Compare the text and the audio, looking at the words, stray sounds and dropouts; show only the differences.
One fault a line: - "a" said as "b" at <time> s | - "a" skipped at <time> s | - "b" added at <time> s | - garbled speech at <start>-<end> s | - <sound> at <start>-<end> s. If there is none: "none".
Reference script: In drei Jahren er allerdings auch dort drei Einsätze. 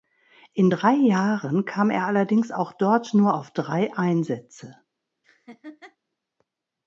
- "kam" added at 1.6 s
- "nur auf" added at 3.1 s
- laugh at 5.2-6.0 s